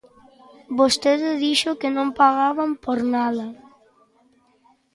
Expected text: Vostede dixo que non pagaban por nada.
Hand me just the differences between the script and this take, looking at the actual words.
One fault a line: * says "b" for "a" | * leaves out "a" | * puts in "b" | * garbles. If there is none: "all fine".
all fine